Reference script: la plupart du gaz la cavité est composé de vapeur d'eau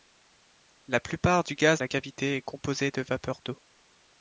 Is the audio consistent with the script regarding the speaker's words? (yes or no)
yes